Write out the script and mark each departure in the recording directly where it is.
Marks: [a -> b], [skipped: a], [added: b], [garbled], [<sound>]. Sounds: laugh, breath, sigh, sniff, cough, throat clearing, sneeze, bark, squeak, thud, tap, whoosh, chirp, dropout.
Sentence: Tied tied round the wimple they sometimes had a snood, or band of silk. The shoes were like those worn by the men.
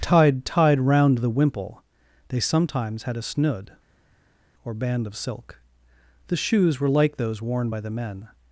Tied tied round the wimple they sometimes had a snood, or band of silk. The shoes were like those worn by the men.